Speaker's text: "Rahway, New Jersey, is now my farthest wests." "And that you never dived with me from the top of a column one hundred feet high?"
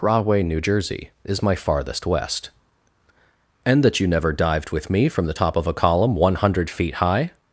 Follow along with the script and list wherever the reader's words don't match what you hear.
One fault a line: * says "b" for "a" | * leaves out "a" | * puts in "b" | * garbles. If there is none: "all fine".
* leaves out "now"
* says "west" for "wests"